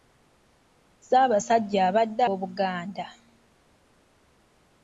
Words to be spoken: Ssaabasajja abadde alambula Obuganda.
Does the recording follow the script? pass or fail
fail